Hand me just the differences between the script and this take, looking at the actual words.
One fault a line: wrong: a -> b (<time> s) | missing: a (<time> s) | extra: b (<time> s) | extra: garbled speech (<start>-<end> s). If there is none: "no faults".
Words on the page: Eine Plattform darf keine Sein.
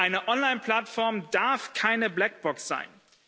extra: Online (0.3 s)
extra: Blackbox (2.1 s)